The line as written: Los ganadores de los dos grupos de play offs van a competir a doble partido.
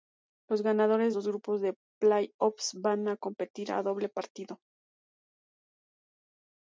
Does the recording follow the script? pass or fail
fail